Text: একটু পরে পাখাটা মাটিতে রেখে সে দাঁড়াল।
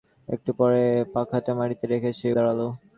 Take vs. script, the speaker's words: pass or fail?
pass